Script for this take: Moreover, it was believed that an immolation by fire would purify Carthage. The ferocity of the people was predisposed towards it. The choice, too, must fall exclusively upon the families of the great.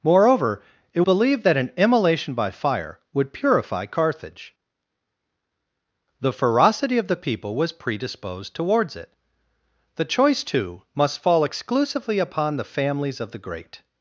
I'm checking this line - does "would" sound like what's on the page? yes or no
yes